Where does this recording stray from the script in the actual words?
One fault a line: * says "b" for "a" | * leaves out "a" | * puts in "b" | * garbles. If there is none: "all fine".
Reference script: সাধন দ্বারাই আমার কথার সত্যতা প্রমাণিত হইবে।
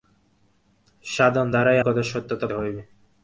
* leaves out "আমার"
* leaves out "প্রমাণিত"